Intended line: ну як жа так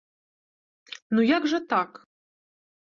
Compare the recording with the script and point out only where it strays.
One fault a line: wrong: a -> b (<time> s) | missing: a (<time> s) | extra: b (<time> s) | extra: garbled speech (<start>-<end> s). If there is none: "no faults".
no faults